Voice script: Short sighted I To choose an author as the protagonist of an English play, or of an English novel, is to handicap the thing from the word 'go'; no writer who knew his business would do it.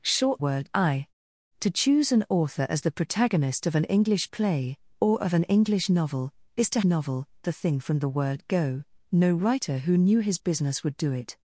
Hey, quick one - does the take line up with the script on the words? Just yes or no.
no